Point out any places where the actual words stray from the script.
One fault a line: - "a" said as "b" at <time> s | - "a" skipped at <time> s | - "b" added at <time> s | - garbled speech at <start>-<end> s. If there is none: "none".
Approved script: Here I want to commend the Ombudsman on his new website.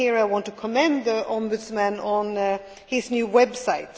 none